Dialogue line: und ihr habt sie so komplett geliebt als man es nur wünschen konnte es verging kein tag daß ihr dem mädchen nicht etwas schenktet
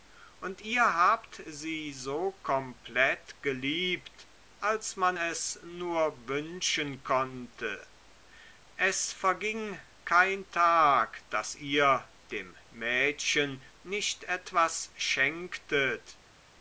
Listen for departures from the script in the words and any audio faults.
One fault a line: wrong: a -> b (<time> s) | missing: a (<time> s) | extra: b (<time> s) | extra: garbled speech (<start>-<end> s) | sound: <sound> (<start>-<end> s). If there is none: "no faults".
no faults